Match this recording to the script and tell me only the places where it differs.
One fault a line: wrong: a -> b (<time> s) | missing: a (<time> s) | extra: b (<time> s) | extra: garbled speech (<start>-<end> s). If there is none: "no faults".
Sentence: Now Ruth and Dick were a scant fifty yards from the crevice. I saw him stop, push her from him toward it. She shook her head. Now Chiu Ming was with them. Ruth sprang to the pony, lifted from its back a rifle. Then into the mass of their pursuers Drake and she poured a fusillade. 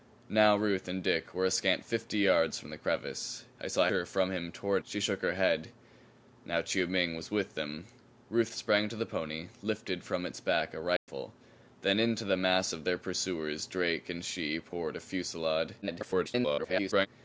missing: him stop push (3.9 s)
missing: it (4.8 s)
extra: garbled speech (15.8-17.1 s)